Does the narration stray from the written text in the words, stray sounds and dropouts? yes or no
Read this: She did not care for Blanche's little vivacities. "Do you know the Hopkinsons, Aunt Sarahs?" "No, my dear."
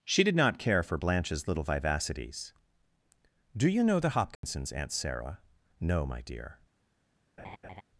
yes